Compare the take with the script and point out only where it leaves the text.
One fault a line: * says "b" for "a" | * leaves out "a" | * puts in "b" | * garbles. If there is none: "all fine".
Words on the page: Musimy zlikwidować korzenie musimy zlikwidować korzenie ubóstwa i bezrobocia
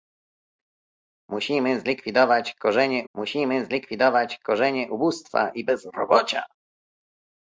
all fine